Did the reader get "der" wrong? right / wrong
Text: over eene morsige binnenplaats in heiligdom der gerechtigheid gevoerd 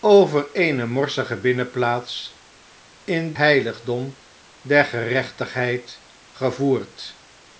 right